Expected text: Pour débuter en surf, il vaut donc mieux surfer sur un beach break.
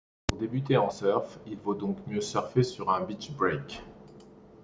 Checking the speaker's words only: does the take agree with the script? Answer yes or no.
yes